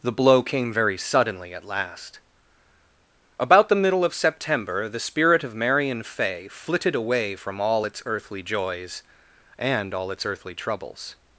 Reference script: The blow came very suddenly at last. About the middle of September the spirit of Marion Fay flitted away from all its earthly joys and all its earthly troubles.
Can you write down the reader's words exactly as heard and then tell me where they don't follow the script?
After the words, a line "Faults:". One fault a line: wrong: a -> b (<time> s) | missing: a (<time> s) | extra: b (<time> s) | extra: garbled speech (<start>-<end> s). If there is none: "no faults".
The blow came very suddenly at last. About the middle of September the spirit of Marion Fay flitted away from all its earthly joys and all its earthly troubles.
Faults:
no faults